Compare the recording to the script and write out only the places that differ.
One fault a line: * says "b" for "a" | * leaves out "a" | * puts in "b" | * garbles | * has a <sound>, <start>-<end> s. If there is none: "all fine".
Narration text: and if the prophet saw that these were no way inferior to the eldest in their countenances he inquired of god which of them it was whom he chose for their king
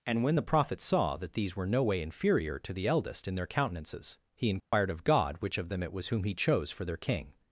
* says "when" for "if"
* has a dropout, 4.6-4.7 s